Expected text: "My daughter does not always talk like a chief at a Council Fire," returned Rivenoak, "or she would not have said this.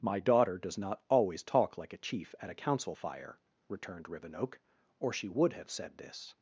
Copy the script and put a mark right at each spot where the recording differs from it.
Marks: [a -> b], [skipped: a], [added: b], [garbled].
"My daughter does not always talk like a chief at a Council Fire," returned Rivenoak, "or she would [skipped: not] have said this.